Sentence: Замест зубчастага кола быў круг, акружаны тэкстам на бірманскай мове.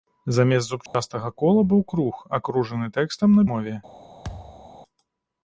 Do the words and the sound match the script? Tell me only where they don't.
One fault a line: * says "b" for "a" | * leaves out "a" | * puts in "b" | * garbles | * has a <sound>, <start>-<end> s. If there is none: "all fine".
* has a dropout, 0.9-0.9 s
* leaves out "бірманскай"
* has a thud, 4.2-4.7 s